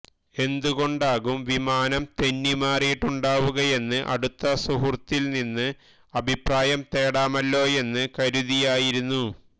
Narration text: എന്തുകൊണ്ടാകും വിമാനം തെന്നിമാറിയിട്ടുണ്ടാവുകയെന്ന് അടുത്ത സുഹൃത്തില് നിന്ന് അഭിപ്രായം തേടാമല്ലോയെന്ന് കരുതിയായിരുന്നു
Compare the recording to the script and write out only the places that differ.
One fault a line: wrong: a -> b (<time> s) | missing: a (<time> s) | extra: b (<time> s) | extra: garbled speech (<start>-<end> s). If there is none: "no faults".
no faults